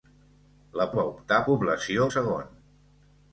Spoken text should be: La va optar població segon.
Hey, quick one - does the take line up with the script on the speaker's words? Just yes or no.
yes